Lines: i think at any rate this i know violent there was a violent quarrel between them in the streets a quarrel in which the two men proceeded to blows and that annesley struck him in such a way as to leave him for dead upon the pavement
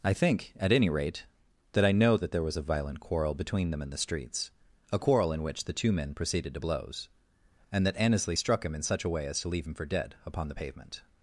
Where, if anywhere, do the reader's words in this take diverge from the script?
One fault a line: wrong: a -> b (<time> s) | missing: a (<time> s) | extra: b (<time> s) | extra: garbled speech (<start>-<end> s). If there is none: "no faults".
wrong: this -> that (1.7 s)
wrong: violent -> that (2.2 s)